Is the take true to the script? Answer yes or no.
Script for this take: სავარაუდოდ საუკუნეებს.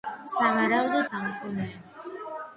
yes